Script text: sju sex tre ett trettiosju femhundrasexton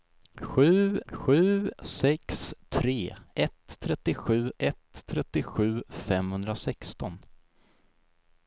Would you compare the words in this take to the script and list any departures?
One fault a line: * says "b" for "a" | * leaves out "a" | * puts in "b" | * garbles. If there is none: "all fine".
* puts in "sju"
* puts in "ett trettiosju"